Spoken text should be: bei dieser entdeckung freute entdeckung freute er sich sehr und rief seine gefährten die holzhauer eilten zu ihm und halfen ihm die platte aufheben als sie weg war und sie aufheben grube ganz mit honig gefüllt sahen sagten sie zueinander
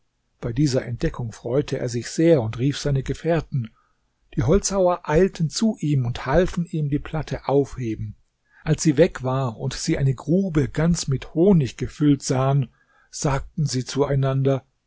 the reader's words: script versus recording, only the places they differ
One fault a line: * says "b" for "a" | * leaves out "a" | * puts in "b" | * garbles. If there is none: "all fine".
* leaves out "entdeckung freute"
* says "eine" for "aufheben"